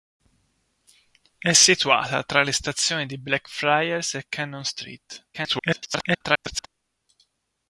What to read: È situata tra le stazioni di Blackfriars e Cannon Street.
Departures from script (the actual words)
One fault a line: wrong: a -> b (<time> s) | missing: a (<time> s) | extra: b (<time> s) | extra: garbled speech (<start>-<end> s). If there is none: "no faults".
extra: garbled speech (5.3-6.7 s)